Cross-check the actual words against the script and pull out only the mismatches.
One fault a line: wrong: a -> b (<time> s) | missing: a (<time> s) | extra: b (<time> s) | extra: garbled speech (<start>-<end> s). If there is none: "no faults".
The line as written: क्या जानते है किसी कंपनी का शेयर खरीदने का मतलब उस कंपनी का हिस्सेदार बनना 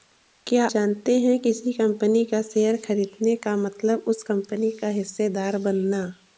no faults